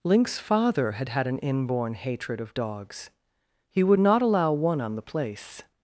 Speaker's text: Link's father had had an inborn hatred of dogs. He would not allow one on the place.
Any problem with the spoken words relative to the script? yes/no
no